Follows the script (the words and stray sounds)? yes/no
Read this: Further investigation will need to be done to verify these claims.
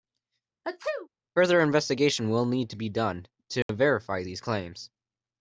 no